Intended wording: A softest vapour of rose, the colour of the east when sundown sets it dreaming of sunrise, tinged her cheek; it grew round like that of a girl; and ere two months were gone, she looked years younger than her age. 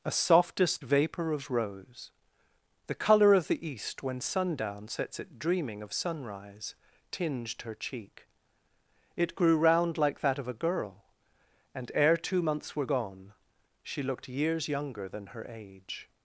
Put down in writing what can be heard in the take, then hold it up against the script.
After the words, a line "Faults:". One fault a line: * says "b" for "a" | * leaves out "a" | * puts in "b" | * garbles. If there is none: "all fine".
A softest vapour of rose, the colour of the east when sundown sets it dreaming of sunrise, tinged her cheek; it grew round like that of a girl; and ere two months were gone, she looked years younger than her age.
Faults:
all fine